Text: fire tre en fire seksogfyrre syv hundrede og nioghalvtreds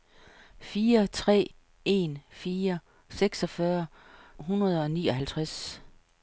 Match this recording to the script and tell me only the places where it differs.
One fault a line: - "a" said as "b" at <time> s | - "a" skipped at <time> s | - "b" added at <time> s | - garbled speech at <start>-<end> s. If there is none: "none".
- "syv" skipped at 3.9 s